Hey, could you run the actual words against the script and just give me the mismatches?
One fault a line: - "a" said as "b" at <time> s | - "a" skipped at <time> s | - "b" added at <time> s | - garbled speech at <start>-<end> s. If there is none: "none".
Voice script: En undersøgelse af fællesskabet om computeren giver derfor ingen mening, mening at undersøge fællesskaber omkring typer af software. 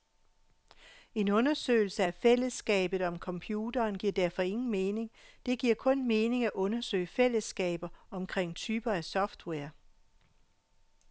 - "det giver kun" added at 5.5 s